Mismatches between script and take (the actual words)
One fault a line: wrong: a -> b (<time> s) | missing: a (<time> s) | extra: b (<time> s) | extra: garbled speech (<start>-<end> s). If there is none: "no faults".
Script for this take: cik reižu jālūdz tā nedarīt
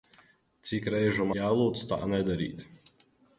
no faults